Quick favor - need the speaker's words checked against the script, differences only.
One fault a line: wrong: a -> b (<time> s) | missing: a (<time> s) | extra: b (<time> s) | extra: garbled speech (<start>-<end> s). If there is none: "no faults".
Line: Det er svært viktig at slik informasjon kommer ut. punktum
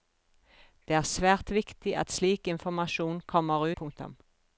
missing: ut (3.7 s)